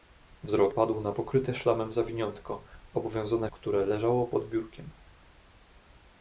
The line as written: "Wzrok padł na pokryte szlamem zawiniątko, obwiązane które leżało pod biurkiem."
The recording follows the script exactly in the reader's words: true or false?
true